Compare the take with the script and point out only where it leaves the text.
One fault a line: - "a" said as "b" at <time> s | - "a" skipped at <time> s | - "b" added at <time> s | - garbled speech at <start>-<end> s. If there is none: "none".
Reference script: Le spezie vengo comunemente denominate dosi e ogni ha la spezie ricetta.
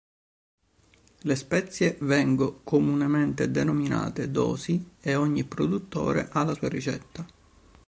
- "produttore" added at 5.4 s
- "spezie" said as "sua" at 6.5 s